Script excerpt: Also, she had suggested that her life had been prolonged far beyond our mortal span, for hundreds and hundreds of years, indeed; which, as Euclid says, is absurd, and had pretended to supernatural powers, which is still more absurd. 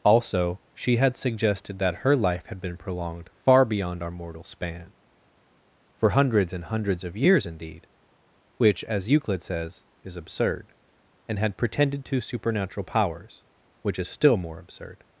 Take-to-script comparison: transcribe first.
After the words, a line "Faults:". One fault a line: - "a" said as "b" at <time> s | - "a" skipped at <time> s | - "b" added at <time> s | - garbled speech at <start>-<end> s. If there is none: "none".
Also, she had suggested that her life had been prolonged far beyond our mortal span, for hundreds and hundreds of years, indeed; which, as Euclid says, is absurd, and had pretended to supernatural powers, which is still more absurd.
Faults:
none